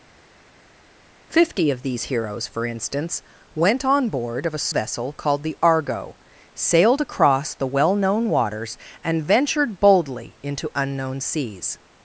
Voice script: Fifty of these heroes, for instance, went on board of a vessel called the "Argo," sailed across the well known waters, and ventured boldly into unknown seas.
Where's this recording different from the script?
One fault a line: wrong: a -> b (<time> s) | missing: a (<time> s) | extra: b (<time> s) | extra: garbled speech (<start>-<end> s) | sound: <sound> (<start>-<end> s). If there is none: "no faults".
no faults